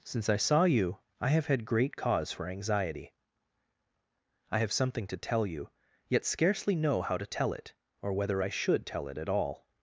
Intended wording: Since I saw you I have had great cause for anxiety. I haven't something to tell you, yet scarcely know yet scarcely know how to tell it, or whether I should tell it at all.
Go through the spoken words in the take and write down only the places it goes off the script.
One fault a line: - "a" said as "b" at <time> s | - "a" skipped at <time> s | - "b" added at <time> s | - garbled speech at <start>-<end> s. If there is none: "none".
- "haven't" said as "have" at 4.6 s
- "yet scarcely know" skipped at 7.0 s